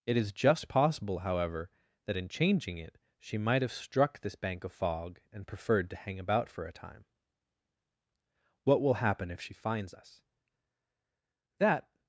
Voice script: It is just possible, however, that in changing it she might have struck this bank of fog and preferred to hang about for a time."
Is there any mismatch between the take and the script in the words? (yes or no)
yes